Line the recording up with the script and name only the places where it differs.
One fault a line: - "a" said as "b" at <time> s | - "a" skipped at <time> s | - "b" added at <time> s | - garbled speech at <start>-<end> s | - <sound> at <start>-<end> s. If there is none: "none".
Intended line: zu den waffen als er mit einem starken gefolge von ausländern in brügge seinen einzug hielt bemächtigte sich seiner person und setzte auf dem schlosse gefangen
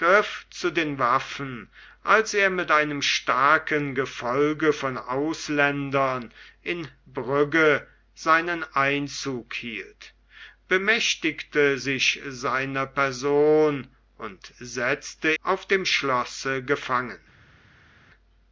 none